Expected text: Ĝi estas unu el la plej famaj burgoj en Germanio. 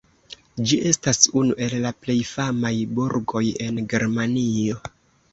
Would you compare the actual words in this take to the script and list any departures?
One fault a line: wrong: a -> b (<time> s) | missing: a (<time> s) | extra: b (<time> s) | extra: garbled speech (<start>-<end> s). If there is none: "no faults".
no faults